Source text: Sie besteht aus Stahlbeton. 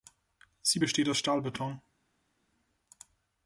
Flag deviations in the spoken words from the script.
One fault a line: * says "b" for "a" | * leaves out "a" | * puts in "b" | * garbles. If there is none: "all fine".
all fine